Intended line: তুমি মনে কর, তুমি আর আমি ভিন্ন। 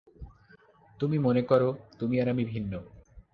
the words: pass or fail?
pass